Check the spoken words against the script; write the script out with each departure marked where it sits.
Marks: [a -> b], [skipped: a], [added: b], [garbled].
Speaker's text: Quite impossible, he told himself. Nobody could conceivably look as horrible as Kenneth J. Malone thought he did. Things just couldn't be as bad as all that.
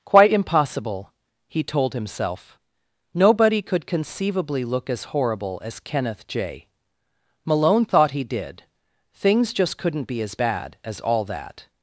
Quite impossible, he told himself. Nobody could conceivably look as horrible as Kenneth J. Malone thought he did. Things just couldn't be as bad as all that.